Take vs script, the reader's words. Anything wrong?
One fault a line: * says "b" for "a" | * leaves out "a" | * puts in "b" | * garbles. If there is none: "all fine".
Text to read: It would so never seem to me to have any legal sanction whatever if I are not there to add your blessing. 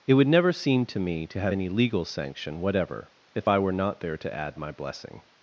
* leaves out "so"
* says "were" for "are"
* says "my" for "your"